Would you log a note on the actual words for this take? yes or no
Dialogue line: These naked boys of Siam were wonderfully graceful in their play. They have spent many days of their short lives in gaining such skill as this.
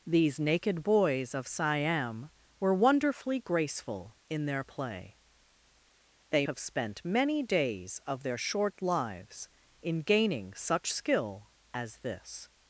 no